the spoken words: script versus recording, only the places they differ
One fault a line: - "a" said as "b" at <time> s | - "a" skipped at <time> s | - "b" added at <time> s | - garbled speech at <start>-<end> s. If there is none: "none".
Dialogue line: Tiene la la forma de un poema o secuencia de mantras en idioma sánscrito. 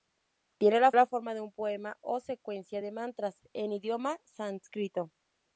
none